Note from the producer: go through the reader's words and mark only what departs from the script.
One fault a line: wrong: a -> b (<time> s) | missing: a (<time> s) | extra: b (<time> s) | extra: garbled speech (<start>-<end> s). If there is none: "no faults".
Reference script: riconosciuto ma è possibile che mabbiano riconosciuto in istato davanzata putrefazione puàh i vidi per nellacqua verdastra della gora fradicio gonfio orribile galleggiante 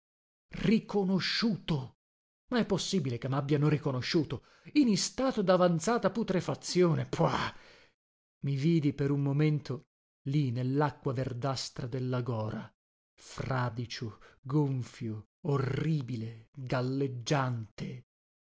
extra: un momento lì (9.1 s)